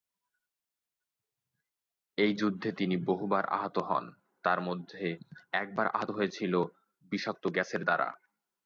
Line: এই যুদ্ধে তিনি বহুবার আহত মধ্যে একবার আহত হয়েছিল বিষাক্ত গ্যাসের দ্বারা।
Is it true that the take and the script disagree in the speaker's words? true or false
true